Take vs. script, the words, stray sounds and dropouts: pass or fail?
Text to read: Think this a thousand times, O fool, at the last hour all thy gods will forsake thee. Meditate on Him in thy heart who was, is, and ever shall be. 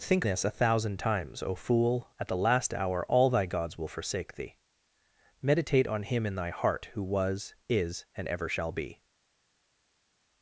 pass